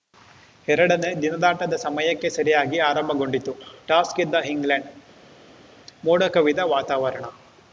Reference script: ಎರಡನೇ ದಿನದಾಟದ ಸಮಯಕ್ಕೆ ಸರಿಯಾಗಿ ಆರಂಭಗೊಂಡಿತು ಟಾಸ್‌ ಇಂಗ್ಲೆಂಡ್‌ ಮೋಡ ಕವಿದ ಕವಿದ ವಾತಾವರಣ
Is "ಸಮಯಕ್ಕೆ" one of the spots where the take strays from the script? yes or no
no